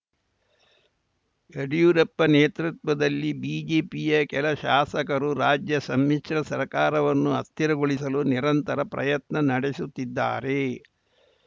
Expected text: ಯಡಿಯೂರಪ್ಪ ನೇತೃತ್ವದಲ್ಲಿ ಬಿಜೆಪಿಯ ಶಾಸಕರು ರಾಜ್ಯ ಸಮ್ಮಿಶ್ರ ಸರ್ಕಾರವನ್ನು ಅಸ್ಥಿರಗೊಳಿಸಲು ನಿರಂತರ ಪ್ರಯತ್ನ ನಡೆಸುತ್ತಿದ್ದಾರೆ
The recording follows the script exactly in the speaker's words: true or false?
false